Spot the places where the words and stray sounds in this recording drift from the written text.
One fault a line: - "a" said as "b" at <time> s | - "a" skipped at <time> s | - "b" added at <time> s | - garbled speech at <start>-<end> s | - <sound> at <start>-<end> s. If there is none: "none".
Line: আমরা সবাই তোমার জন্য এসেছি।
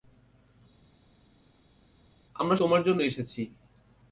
- "সবাই" skipped at 2.6 s